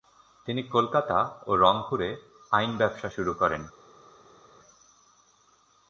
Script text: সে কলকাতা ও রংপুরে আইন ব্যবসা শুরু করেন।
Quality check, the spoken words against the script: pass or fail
fail